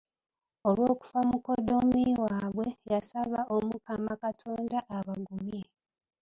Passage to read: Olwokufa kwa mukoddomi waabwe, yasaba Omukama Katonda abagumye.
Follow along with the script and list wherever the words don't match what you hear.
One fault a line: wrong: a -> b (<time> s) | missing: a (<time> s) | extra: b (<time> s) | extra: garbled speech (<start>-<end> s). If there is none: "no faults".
missing: kwa (1.2 s)